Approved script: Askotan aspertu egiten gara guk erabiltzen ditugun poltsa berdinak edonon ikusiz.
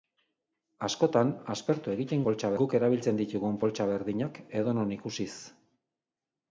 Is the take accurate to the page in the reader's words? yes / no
no